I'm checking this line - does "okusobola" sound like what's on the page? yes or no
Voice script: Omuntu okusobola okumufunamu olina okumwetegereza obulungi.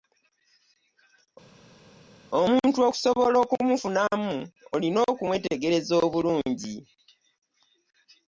yes